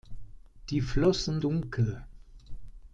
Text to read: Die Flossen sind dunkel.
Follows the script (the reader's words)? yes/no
no